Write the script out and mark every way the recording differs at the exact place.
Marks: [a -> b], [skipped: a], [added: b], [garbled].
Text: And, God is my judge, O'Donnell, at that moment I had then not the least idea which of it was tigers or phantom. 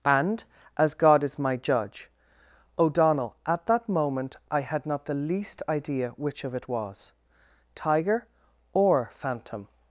And, [added: as] God is my judge, O'Donnell, at that moment I had [skipped: then] not the least idea which of it was [tigers -> tiger] or phantom.